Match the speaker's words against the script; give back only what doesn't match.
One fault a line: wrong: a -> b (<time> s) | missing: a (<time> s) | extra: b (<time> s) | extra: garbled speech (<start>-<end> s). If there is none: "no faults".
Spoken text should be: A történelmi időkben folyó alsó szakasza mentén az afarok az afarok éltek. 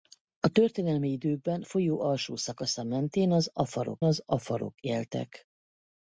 no faults